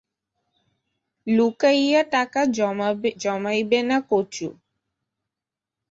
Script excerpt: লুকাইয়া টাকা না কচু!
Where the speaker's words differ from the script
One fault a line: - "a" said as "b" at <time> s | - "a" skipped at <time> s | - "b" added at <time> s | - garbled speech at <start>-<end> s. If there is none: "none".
- "জমাইবে" added at 3.2 s